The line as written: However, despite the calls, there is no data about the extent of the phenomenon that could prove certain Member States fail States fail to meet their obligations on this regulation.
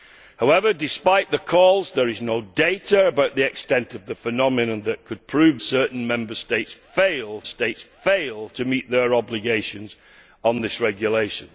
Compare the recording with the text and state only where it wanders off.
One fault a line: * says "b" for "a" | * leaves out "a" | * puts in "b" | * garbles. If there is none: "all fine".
all fine